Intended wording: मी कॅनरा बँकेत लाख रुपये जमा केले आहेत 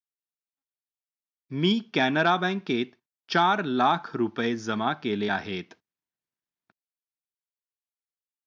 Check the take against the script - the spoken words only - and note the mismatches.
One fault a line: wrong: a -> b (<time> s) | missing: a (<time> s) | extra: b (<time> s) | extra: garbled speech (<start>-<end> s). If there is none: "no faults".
extra: चार (3.3 s)